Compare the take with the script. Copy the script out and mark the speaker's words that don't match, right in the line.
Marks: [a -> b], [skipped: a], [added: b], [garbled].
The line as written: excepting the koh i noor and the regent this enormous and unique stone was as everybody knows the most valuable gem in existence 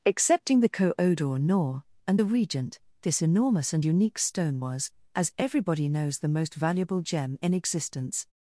excepting the koh i noor and the regent this enormous and unique stone was as everybody knows the most valuable gem in existence